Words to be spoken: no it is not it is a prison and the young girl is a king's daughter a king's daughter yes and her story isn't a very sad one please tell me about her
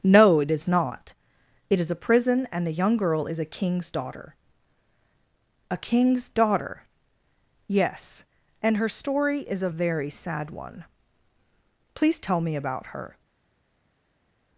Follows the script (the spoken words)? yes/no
no